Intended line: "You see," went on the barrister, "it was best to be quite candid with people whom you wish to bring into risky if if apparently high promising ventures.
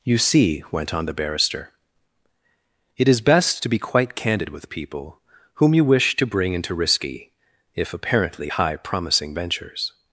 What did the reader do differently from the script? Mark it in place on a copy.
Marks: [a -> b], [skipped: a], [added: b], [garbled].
"You see," went on the barrister, "it [was -> is] best to be quite candid with people whom you wish to bring into risky if [skipped: if] apparently high promising ventures.